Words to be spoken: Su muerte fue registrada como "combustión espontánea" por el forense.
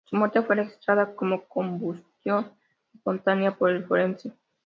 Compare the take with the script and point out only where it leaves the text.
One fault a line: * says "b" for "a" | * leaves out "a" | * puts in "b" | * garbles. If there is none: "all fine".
all fine